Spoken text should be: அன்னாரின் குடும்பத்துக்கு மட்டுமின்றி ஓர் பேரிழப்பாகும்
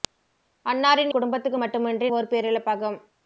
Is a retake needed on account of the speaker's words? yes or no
no